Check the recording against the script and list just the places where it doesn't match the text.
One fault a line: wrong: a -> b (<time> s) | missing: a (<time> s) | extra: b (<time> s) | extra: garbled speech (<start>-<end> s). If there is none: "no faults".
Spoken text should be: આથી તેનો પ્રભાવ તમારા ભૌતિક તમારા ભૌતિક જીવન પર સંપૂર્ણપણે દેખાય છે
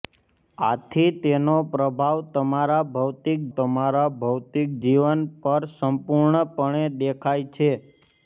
no faults